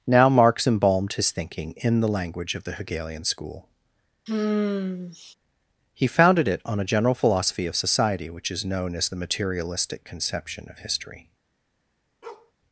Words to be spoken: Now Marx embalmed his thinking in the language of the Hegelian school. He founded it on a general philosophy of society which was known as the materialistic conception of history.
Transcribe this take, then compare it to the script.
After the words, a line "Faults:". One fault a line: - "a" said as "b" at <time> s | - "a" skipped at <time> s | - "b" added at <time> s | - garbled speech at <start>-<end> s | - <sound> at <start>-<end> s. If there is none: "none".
Now Marx embalmed his thinking in the language of the Hegelian school. He founded it on a general philosophy of society which is known as the materialistic conception of history.
Faults:
- sigh at 4.3-5.3 s
- "was" said as "is" at 8.5 s
- bark at 12.2-12.5 s